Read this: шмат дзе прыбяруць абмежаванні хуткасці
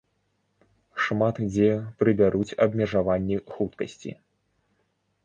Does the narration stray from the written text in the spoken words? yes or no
no